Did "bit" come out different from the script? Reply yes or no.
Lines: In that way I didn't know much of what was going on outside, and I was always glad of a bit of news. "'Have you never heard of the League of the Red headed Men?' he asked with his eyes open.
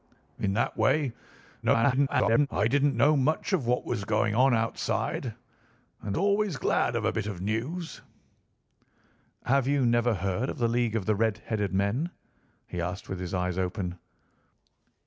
no